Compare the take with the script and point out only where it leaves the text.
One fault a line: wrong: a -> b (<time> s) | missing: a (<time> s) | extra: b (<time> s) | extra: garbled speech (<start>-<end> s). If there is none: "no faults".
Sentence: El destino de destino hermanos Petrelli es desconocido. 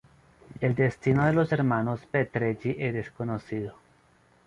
wrong: destino -> los (1.3 s)